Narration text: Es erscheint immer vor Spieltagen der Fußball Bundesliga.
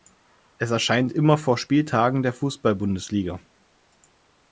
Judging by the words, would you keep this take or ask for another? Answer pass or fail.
pass